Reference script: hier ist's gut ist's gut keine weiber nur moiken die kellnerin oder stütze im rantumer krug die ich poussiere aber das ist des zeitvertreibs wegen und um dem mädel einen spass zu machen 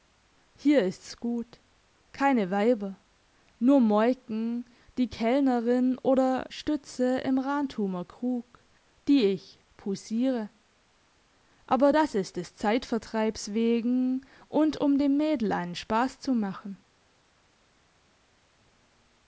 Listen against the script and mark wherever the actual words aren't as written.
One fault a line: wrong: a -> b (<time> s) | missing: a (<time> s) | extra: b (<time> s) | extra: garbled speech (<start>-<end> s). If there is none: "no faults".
missing: ist's gut (1.6 s)